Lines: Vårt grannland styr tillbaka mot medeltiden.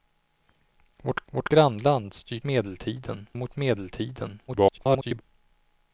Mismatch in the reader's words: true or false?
true